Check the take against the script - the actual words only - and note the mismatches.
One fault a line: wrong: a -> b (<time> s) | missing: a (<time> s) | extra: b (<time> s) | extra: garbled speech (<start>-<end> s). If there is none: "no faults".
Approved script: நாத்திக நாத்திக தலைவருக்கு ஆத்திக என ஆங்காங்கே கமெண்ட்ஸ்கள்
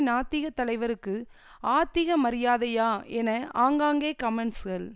missing: நாத்திக (0.5 s)
extra: மரியாதையா (2.2 s)